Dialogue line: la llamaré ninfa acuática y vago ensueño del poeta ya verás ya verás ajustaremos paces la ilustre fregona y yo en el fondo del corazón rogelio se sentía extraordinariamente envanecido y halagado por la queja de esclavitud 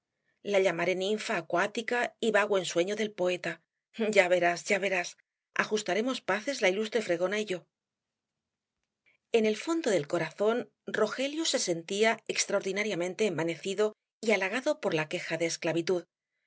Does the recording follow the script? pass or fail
pass